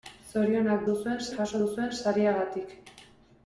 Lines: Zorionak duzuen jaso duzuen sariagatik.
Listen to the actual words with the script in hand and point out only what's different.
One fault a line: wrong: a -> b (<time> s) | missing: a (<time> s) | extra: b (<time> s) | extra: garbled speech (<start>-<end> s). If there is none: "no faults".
no faults